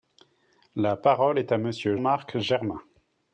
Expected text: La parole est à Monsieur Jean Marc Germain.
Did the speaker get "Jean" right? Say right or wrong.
wrong